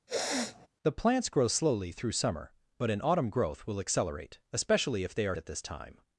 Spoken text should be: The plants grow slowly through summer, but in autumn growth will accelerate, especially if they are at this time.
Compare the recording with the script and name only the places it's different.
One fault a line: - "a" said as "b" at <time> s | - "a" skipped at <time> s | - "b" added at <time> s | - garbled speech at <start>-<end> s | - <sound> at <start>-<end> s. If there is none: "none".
- sniff at 0.1-0.7 s